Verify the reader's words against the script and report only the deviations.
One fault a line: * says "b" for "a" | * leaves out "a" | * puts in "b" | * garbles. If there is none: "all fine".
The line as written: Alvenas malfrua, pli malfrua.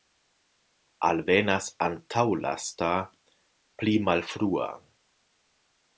* says "antaulasta" for "malfrua"